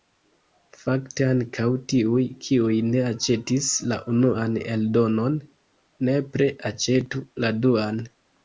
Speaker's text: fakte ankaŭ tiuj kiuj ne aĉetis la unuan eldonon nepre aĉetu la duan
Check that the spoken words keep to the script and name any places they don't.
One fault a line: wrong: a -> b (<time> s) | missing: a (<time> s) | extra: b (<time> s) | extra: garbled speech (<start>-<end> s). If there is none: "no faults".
no faults